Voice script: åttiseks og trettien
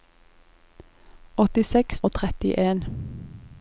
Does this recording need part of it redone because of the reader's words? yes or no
no